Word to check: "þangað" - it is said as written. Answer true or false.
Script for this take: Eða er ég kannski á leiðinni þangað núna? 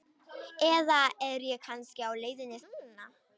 false